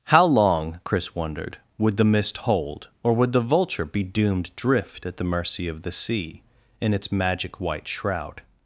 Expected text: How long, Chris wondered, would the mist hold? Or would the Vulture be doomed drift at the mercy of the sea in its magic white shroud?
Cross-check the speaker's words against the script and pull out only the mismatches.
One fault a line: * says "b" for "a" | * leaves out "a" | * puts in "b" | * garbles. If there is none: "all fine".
all fine